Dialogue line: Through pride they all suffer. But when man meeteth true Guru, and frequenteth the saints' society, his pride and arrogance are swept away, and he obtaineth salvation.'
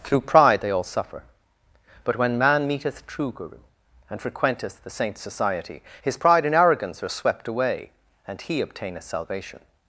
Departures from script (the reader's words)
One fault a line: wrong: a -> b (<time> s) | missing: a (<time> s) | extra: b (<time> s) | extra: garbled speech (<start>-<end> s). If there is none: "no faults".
no faults